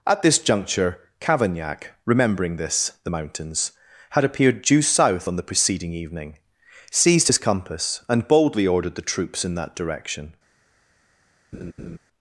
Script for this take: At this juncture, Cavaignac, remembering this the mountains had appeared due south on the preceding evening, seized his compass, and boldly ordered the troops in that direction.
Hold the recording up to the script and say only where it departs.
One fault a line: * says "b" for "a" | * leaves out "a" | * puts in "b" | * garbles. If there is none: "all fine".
all fine